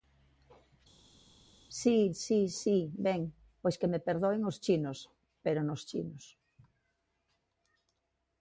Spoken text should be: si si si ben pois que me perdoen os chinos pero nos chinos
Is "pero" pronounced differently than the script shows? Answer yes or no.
no